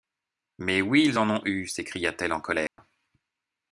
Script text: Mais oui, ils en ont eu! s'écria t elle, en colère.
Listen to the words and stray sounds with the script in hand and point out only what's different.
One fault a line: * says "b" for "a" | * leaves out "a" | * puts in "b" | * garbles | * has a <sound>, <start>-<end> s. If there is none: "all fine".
* has a dropout, 2.7-2.8 s